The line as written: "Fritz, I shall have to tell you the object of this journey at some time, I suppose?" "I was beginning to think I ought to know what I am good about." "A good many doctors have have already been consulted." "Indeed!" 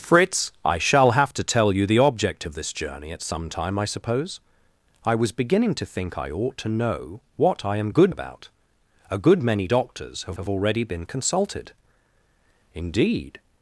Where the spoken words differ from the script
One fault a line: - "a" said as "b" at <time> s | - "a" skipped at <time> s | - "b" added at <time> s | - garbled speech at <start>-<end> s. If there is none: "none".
none